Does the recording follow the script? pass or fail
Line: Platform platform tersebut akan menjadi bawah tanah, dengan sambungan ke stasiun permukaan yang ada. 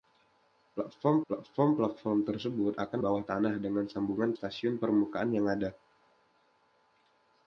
fail